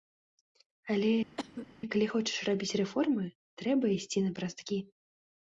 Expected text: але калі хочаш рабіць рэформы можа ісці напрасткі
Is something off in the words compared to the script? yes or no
yes